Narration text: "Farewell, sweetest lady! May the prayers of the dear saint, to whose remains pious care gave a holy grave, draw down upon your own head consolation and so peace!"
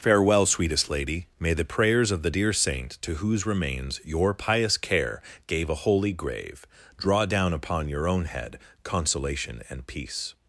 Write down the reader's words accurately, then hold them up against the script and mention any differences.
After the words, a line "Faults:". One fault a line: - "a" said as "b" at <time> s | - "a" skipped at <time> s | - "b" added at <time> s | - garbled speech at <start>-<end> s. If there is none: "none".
"Farewell, sweetest lady! May the prayers of the dear saint, to whose remains your pious care gave a holy grave, draw down upon your own head consolation and peace!"
Faults:
- "your" added at 4.0 s
- "so" skipped at 9.9 s